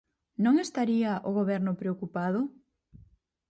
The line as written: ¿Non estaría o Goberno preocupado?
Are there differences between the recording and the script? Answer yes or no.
no